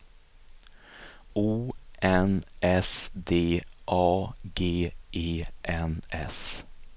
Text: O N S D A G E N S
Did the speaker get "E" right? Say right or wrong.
right